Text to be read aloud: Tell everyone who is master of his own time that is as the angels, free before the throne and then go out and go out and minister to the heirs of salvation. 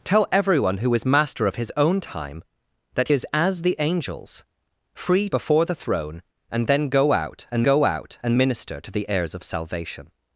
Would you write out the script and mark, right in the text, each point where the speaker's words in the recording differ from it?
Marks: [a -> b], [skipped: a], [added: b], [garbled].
Tell everyone who is master of his own time that is as the angels, free before the throne and then go out and go out and minister to the heirs of salvation.